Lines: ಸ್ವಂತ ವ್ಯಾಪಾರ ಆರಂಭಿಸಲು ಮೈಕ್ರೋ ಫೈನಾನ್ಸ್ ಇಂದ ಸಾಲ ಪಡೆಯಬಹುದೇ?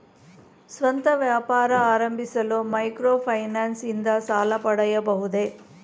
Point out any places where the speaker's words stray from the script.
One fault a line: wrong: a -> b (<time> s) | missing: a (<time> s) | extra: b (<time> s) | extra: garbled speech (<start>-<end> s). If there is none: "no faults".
no faults